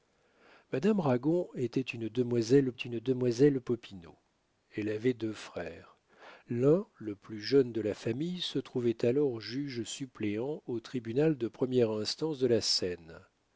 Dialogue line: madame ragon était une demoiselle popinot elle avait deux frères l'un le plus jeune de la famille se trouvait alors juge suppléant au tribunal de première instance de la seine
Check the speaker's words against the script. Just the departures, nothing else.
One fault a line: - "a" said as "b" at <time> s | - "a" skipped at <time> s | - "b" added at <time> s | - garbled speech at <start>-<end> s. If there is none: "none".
- "une demoiselle" added at 2.7 s